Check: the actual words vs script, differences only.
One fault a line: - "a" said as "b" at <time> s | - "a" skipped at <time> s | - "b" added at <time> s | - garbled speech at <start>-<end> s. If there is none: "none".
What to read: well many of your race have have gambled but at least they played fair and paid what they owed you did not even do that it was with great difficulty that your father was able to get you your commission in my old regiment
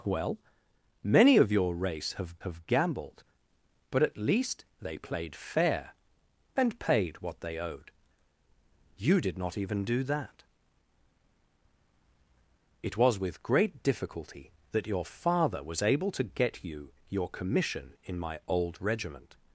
none